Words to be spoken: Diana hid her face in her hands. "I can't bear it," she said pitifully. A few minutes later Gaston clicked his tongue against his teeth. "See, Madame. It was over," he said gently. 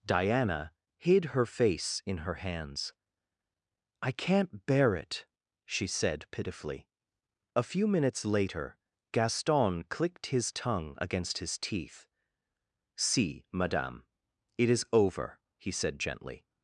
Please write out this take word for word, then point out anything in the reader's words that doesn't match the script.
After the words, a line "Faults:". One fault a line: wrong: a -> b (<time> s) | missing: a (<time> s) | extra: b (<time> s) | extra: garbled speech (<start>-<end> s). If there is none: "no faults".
Diana hid her face in her hands. "I can't bear it," she said pitifully. A few minutes later Gaston clicked his tongue against his teeth. "See, Madame. It is over," he said gently.
Faults:
wrong: was -> is (14.7 s)